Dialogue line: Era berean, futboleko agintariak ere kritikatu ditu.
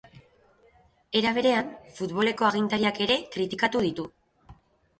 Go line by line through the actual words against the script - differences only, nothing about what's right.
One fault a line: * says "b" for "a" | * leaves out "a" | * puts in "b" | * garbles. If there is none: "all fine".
all fine